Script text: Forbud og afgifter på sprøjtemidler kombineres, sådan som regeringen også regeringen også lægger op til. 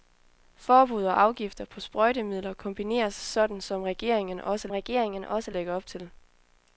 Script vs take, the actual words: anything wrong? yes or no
no